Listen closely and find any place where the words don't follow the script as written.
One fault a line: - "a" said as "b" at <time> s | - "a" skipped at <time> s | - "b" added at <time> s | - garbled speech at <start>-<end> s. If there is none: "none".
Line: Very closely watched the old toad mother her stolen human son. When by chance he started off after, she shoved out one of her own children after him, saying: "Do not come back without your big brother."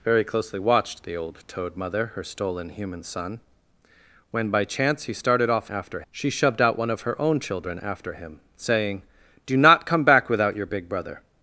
none